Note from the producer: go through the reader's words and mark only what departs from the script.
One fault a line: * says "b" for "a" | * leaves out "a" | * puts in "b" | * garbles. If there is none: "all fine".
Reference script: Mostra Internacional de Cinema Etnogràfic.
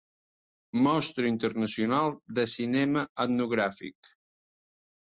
all fine